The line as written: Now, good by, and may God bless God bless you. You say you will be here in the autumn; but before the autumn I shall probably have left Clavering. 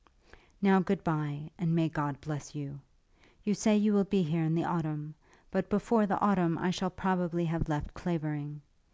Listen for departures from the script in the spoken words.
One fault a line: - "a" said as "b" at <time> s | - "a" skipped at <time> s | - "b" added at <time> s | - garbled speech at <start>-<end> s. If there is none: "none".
- "God bless" skipped at 2.5 s